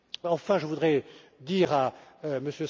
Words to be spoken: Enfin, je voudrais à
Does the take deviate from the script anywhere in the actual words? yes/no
yes